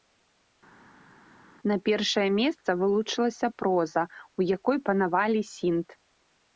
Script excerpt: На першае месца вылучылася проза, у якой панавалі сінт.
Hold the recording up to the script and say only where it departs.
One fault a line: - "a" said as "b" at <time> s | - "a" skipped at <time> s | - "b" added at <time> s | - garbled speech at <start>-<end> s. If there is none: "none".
none